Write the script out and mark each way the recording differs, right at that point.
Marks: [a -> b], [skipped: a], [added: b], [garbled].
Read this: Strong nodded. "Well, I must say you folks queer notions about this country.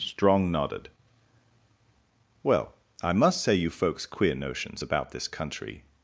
Strong nodded. "Well, I must say you folks queer notions about this country.